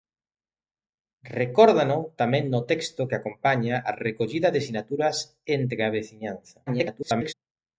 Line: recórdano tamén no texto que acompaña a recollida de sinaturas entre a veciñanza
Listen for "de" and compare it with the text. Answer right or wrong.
right